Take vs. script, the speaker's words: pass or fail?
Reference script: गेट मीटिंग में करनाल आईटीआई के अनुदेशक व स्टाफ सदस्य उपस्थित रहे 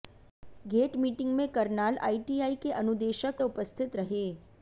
fail